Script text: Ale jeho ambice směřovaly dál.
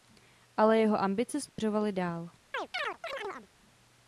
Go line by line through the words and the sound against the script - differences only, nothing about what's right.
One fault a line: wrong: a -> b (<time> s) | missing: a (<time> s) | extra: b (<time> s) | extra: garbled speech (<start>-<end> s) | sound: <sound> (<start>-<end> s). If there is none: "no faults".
sound: dropout (1.5-1.6 s)
sound: chirp (2.5-3.5 s)